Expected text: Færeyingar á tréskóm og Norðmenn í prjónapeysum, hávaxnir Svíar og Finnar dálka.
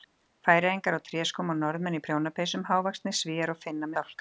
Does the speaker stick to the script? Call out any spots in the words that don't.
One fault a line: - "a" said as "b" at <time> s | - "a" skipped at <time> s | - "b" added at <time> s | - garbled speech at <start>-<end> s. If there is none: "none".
none